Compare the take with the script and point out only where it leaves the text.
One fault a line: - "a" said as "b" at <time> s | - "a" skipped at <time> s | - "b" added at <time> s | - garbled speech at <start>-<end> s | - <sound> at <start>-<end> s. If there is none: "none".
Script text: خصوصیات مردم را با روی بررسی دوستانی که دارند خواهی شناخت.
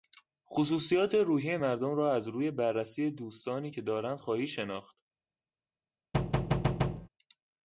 - "روحی" added at 1.1 s
- "با" said as "از" at 2.1 s
- thud at 6.1-7.1 s